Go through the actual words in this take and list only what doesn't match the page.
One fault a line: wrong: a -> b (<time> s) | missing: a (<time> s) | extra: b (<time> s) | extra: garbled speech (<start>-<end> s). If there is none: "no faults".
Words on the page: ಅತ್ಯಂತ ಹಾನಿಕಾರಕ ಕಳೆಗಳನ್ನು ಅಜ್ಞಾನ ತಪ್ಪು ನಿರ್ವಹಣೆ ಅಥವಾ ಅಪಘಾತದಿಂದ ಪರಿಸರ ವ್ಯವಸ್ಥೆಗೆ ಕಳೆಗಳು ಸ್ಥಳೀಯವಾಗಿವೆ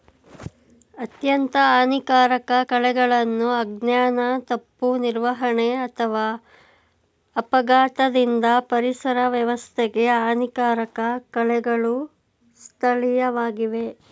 extra: ಹಾನಿಕಾರಕ (10.2 s)